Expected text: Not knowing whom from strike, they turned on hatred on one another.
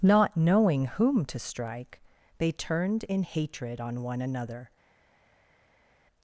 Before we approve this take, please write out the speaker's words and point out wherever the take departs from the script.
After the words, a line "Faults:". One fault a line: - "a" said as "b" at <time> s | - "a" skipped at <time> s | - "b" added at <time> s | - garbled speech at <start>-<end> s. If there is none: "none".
Not knowing whom to strike, they turned in hatred on one another.
Faults:
- "from" said as "to" at 1.2 s
- "on" said as "in" at 3.1 s